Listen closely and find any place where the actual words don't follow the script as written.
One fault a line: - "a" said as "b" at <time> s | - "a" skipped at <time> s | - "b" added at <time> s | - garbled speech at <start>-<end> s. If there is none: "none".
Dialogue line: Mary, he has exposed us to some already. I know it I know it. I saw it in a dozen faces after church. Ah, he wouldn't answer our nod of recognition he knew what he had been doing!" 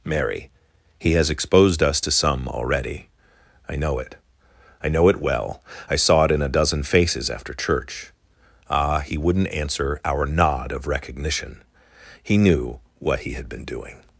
- "well" added at 5.2 s